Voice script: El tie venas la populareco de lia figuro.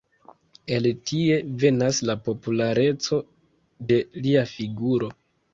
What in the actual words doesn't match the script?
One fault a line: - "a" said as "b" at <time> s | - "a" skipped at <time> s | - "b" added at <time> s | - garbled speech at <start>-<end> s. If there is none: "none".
none